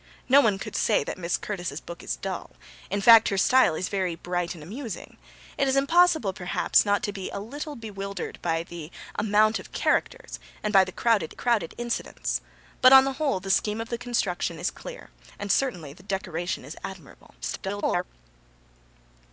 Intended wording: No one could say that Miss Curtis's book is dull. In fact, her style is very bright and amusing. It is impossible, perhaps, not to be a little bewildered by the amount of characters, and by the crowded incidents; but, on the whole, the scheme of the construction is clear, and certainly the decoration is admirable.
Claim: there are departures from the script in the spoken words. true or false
true